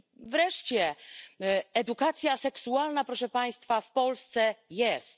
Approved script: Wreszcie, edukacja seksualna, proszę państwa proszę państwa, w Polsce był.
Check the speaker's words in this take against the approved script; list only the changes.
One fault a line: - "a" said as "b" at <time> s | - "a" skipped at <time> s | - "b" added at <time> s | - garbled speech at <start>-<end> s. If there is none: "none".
- "proszę państwa" skipped at 3.8 s
- "był" said as "jest" at 4.7 s